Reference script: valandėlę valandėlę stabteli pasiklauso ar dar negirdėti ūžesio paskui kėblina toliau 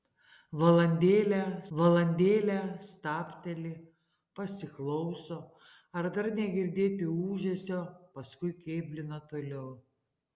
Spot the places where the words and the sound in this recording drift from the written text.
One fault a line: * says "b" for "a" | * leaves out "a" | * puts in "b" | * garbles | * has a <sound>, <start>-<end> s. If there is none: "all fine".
all fine